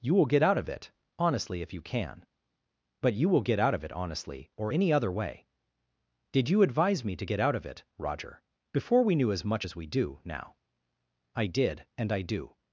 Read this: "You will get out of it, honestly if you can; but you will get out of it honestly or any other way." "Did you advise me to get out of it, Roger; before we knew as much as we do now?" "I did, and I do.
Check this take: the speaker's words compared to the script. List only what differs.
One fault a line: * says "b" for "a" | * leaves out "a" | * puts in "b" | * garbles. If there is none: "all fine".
all fine